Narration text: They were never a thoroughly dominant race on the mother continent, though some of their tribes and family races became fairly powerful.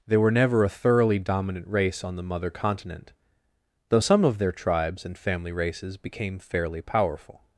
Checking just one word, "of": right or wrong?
right